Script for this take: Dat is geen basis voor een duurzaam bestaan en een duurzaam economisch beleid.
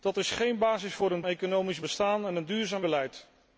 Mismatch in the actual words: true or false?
true